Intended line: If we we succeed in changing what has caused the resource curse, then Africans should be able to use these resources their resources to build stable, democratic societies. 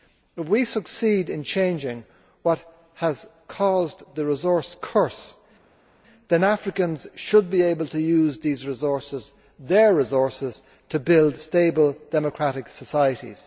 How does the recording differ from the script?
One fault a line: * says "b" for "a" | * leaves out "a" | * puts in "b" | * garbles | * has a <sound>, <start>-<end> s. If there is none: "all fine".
* leaves out "we"